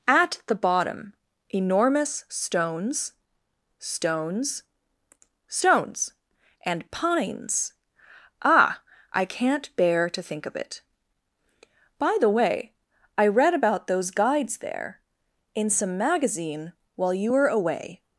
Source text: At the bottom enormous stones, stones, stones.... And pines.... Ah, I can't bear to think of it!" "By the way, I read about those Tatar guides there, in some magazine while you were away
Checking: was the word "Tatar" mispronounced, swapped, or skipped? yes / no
yes